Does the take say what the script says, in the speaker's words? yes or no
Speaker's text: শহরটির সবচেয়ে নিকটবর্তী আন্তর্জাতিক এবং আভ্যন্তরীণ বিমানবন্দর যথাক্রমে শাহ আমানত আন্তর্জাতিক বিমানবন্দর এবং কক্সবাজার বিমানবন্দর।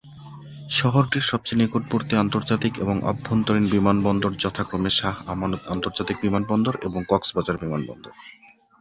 yes